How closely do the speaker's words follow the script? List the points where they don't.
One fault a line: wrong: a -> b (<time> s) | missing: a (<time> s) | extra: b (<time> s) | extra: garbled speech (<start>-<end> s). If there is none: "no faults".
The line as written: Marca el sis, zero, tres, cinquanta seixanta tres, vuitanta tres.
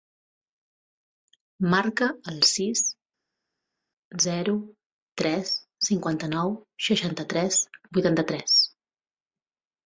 extra: nou (6.3 s)